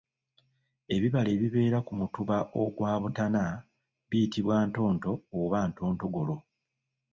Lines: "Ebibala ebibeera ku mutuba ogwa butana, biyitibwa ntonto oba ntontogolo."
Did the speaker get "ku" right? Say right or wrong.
right